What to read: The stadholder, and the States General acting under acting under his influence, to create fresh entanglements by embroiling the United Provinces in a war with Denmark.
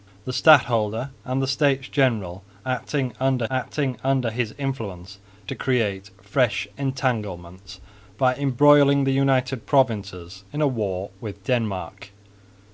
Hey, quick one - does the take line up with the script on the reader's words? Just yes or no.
yes